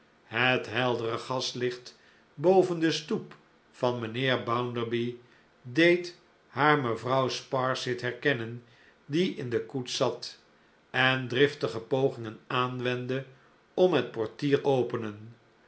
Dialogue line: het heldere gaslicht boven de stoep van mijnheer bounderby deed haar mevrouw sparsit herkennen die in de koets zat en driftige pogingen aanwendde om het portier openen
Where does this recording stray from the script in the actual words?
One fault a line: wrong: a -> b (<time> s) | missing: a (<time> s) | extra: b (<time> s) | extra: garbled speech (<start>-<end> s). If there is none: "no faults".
no faults